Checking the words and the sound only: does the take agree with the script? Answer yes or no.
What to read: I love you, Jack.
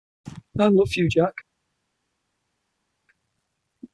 yes